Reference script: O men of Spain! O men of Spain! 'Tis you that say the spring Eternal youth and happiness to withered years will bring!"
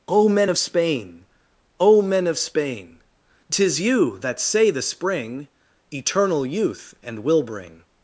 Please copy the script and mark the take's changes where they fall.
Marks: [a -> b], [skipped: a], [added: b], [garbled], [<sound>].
O men of Spain! O men of Spain! 'Tis you that say the spring Eternal youth and [skipped: happiness to withered years] will bring!"